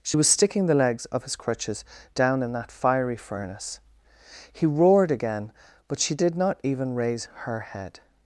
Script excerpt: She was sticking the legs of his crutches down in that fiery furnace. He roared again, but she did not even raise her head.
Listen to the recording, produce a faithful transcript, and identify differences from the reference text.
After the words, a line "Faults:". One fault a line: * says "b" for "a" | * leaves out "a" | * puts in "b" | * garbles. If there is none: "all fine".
She was sticking the legs of his crutches down in that fiery furnace. He roared again, but she did not even raise her head.
Faults:
all fine